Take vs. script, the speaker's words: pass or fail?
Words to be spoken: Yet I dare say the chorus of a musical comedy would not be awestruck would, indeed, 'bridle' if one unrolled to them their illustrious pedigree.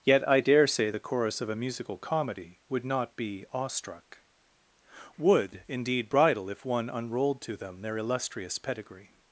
pass